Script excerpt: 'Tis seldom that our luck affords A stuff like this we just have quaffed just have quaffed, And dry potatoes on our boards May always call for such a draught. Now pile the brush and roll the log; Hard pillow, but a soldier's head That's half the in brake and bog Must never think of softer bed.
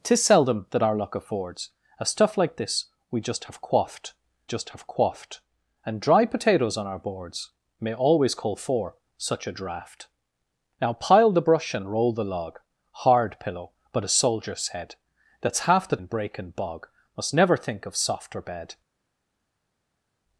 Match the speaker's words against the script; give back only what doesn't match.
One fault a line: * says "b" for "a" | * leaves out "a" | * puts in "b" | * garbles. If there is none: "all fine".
all fine